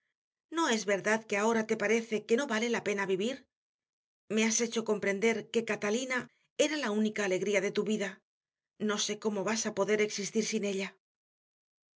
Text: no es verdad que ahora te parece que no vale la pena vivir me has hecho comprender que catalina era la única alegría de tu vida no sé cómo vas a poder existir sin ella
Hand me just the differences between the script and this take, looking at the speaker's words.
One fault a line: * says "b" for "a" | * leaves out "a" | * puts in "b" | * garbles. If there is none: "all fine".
all fine